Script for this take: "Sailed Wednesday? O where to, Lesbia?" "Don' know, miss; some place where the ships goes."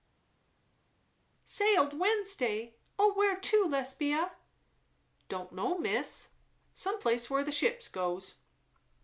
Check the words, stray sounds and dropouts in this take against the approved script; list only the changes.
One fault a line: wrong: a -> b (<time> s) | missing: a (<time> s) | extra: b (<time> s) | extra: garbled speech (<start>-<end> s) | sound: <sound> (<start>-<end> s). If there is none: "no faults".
no faults